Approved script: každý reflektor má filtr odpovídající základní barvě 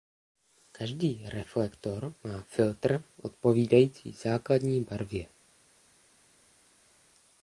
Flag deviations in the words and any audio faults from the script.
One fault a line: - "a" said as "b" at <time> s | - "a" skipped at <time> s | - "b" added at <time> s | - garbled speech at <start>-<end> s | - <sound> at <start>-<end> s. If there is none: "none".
none